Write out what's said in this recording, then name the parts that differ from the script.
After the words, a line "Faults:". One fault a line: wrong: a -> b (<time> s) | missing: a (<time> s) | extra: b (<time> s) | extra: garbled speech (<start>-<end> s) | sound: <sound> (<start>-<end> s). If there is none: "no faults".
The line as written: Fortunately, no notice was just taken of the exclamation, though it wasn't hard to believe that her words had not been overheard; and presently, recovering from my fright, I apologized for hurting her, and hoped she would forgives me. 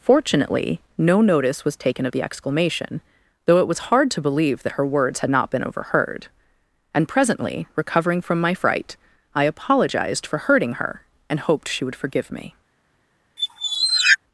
Fortunately, no notice was taken of the exclamation, though it was hard to believe that her words had not been overheard; and presently, recovering from my fright, I apologized for hurting her, and hoped she would forgive me.
Faults:
missing: just (1.8 s)
wrong: wasn't -> was (3.7 s)
wrong: forgives -> forgive (12.0 s)
sound: squeak (13.4-14.2 s)